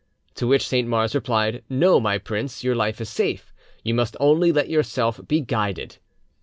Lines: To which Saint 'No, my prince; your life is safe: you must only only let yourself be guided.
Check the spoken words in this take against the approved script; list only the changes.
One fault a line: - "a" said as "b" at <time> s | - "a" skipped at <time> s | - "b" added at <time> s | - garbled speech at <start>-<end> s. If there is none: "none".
- "Mars replied" added at 0.9 s
- "only" skipped at 4.5 s